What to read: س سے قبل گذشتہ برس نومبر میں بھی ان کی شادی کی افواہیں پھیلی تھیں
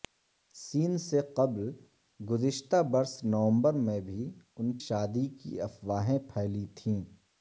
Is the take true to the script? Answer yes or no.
no